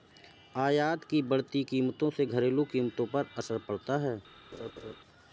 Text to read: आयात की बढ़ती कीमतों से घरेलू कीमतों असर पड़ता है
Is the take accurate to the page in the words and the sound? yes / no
no